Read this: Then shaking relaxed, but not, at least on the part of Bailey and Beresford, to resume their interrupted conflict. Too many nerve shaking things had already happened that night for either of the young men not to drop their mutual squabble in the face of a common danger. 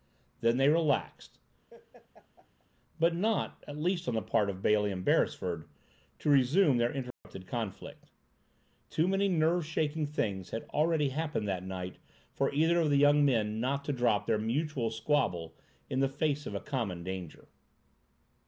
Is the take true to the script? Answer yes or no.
no